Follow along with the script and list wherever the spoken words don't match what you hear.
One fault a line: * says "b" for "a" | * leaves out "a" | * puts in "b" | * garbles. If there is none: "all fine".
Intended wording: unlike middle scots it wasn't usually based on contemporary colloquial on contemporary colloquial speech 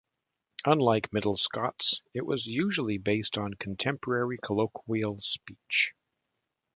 * says "was" for "wasn't"
* leaves out "on contemporary colloquial"